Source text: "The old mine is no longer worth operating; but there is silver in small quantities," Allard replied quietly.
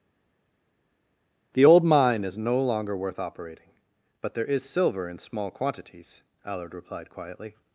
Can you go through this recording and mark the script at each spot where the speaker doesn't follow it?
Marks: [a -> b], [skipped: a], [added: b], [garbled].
"The old mine is no longer worth operating; but there is silver in small quantities," Allard replied quietly.